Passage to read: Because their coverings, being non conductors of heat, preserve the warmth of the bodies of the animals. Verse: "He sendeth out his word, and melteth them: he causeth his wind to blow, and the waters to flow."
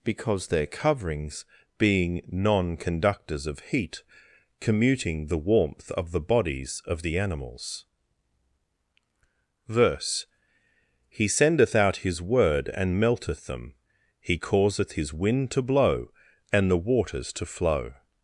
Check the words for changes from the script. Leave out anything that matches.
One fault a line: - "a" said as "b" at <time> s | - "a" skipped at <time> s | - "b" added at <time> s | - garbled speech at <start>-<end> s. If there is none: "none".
- "preserve" said as "commuting" at 4.6 s